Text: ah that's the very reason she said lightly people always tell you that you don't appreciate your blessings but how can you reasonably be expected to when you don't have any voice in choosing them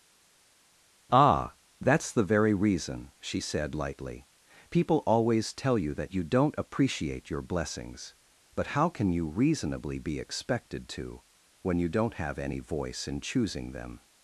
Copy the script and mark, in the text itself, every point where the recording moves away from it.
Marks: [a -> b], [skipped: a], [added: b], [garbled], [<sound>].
ah that's the very reason she said lightly people always tell you that you don't appreciate your blessings but how can you reasonably be expected to when you don't have any voice in choosing them